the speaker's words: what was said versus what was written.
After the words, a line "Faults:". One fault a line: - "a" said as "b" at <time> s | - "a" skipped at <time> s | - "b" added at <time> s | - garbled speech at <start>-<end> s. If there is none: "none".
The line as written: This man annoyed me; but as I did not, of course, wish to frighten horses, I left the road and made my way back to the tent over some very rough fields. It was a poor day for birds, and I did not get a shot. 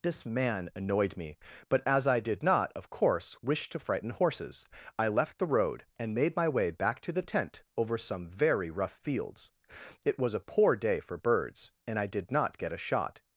This man annoyed me; but as I did not, of course, wish to frighten horses, I left the road and made my way back to the tent over some very rough fields. It was a poor day for birds, and I did not get a shot.
Faults:
none